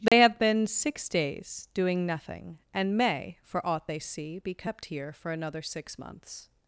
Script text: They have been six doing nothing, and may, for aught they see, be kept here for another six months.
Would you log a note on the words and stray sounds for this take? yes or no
yes